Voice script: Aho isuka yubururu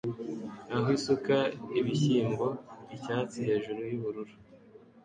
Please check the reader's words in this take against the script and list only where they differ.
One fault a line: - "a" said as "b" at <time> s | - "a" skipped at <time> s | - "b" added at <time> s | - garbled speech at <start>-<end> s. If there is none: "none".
- "ibishyimbo icyatsi hejuru" added at 1.8 s